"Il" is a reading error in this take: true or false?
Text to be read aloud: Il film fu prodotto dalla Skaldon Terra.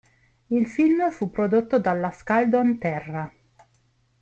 false